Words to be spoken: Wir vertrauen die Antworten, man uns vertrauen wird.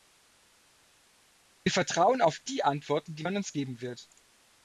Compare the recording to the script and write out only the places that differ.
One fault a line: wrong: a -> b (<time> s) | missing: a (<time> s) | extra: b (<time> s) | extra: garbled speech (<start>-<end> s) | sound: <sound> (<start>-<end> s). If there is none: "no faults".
extra: auf (2.2 s)
extra: die (3.1 s)
wrong: vertrauen -> geben (3.5 s)